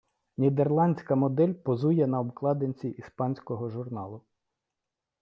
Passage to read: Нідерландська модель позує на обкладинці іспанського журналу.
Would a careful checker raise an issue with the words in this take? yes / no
no